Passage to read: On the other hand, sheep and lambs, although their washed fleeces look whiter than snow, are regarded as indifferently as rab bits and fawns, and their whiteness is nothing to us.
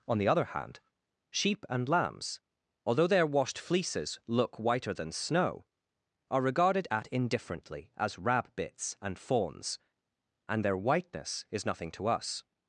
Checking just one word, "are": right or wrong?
right